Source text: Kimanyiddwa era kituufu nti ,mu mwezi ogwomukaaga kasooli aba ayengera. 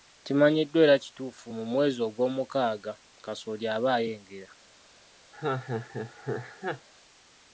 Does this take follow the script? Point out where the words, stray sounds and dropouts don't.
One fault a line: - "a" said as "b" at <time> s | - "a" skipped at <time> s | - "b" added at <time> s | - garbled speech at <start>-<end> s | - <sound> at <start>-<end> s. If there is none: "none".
- "nti" skipped at 1.5 s
- laugh at 5.3-6.9 s